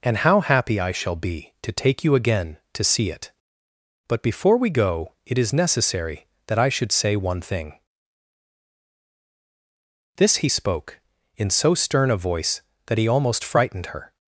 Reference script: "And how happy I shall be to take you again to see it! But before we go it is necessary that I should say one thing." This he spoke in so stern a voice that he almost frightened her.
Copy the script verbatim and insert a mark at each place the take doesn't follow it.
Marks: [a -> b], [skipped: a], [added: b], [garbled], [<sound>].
"And how happy I shall be to take you again to see it! But before we go it is necessary that I should say one thing." This he spoke in so stern a voice that he almost frightened her.